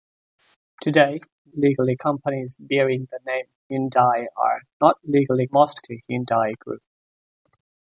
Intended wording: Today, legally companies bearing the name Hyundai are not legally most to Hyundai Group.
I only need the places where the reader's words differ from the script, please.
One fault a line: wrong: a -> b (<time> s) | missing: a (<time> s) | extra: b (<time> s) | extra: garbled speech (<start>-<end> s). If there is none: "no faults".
no faults